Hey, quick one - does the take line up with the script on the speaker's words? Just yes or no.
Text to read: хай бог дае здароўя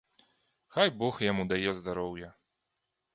no